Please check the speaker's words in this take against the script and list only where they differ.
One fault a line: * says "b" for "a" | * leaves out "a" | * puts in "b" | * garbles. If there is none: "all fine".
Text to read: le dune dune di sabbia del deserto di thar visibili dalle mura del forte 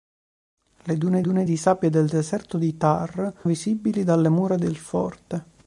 all fine